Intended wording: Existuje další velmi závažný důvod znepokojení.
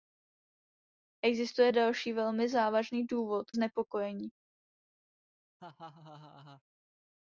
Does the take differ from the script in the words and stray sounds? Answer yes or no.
yes